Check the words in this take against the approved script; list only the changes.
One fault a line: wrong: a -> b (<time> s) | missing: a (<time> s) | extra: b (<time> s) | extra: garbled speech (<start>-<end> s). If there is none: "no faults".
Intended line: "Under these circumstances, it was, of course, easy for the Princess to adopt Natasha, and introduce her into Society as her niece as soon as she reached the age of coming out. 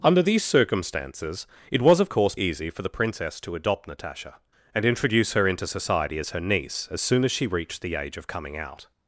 no faults